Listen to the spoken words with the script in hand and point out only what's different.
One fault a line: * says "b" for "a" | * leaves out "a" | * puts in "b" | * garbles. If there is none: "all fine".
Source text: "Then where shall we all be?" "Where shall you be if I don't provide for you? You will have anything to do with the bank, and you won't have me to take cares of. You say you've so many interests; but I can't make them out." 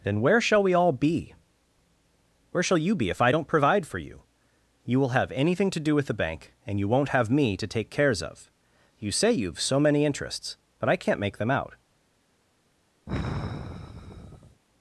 all fine